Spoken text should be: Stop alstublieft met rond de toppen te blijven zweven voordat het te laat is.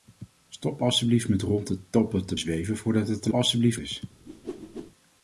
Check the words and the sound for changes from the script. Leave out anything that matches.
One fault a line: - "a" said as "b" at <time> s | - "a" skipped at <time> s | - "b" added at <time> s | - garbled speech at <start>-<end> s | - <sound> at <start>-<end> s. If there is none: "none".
- "blijven" skipped at 2.4 s
- "laat" said as "alstublieft" at 3.3 s
- whoosh at 4.3-4.9 s